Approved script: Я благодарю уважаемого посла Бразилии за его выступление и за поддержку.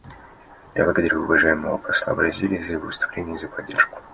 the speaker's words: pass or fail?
pass